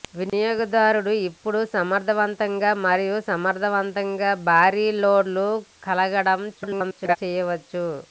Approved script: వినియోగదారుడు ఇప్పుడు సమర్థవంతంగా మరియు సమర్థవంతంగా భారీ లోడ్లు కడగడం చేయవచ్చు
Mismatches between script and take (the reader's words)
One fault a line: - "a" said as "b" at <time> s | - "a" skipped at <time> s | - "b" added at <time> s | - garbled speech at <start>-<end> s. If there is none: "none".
- garbled speech at 6.5-7.2 s